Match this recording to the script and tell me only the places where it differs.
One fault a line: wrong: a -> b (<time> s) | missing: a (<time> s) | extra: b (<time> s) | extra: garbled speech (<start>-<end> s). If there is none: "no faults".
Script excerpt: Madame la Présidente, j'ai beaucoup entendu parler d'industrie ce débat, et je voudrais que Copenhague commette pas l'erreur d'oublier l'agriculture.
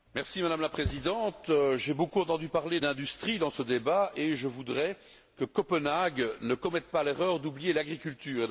extra: dans (3.4 s)
extra: ne (6.4 s)